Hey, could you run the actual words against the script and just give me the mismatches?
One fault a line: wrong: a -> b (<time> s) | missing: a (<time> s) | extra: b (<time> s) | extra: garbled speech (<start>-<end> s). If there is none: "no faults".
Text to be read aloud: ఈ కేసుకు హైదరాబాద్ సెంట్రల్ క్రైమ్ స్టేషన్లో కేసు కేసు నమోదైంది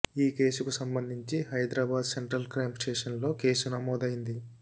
extra: సంబంధించి (0.7 s)
missing: కేసు (3.7 s)